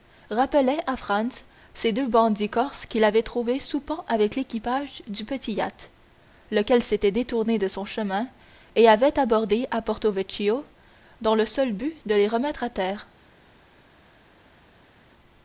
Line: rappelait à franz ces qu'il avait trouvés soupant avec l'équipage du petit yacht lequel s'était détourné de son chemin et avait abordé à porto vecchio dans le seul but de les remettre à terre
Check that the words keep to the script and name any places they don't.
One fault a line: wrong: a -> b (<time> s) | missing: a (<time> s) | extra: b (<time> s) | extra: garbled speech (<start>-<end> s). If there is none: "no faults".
extra: deux bandits corses (1.9 s)